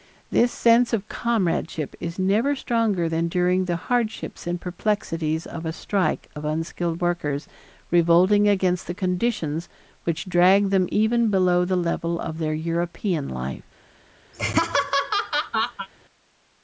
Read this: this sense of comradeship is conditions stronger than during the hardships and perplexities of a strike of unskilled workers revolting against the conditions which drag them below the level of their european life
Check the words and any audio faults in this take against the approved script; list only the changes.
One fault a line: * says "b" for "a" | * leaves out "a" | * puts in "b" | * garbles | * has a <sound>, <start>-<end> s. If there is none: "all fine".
* says "never" for "conditions"
* puts in "even"
* has a laugh, 14.3-15.9 s